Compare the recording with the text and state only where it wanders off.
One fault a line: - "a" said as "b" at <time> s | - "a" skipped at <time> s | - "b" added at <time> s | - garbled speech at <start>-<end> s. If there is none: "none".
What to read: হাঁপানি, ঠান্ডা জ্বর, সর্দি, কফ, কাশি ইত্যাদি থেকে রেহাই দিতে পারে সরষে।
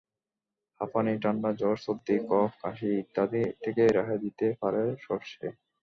none